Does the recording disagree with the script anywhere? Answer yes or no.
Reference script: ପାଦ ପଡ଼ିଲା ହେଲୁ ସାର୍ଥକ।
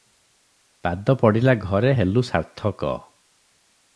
yes